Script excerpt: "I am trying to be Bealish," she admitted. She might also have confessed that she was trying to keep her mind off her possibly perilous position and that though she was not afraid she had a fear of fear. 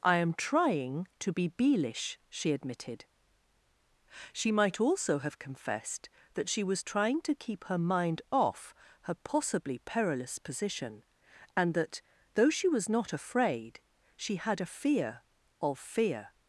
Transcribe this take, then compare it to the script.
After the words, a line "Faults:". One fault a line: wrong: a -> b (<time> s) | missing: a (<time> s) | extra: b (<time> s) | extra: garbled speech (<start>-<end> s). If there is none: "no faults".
"I am trying to be Bealish," she admitted. She might also have confessed that she was trying to keep her mind off her possibly perilous position and that though she was not afraid she had a fear of fear.
Faults:
no faults